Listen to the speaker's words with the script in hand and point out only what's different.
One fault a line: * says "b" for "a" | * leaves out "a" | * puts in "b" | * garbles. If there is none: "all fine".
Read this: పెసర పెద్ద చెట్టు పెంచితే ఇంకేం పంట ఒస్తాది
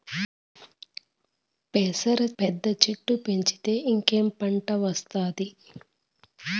all fine